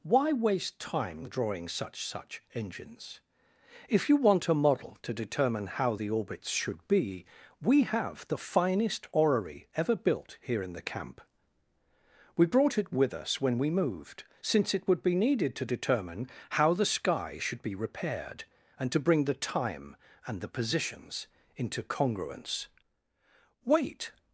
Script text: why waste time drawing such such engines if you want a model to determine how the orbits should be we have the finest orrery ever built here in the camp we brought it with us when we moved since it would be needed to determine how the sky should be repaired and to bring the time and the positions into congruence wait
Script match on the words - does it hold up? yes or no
yes